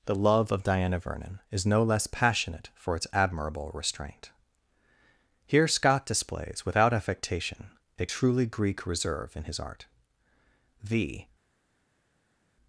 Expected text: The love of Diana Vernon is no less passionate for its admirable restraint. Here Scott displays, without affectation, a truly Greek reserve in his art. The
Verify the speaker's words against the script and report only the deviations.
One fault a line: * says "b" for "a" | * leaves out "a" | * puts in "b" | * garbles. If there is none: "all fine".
all fine